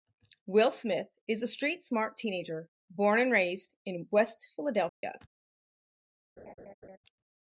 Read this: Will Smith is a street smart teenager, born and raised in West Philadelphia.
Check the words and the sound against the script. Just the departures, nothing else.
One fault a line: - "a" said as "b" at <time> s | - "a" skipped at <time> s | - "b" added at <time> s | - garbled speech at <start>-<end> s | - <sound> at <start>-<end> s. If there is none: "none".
- dropout at 4.9-5.0 s
- laugh at 6.4-7.0 s